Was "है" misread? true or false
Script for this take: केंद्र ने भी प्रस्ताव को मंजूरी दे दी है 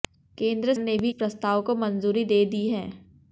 false